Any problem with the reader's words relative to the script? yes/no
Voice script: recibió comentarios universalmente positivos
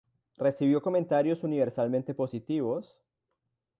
no